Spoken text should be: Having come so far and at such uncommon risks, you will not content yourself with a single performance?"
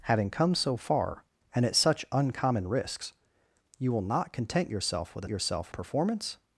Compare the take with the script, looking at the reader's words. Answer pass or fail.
fail